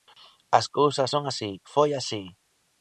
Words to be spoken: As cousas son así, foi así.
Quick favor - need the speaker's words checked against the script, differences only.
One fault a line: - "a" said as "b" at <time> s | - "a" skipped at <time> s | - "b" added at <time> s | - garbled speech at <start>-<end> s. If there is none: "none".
none